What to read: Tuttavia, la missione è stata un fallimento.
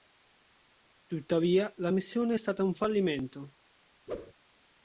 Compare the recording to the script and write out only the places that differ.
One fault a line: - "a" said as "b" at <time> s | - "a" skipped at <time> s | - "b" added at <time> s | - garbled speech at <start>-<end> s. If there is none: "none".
none